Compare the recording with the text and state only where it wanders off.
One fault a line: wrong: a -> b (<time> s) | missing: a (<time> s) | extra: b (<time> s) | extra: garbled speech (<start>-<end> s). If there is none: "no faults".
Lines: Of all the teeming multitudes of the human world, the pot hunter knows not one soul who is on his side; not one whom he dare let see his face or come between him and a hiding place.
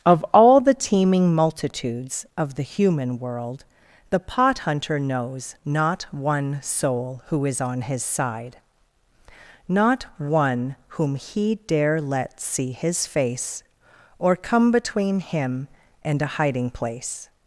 no faults